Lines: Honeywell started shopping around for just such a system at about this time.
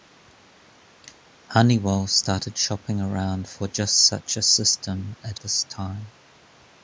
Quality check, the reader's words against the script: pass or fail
fail